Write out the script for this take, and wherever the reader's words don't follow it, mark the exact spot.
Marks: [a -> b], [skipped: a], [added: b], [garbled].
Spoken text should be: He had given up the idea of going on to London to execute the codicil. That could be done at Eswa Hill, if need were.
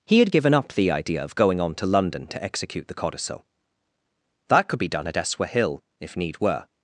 He had given up the idea of going on to London to execute the codicil. That could be done at Eswa Hill, if need were.